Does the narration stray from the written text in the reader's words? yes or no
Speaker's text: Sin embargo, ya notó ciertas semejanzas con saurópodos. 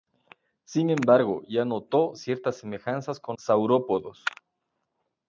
no